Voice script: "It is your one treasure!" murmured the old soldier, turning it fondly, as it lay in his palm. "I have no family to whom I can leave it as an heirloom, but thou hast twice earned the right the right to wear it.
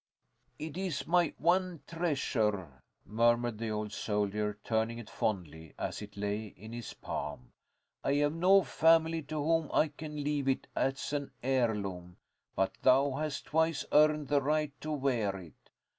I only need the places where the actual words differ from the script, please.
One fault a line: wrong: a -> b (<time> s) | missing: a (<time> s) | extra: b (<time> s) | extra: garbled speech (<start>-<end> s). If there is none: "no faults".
wrong: your -> my (1.1 s)
missing: the right (14.8 s)